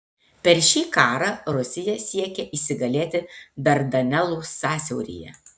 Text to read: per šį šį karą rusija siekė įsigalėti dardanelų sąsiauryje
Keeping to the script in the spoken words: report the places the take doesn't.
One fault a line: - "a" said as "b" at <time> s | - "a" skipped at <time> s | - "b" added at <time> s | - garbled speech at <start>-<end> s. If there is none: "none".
- "šį" skipped at 0.8 s